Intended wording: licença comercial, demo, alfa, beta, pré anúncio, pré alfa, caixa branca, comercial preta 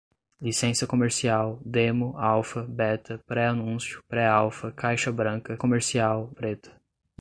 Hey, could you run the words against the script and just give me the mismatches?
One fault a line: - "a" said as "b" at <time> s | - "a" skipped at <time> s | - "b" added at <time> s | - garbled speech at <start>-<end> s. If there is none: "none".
none